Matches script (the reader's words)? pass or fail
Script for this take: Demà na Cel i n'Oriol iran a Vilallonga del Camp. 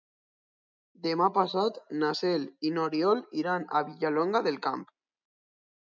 fail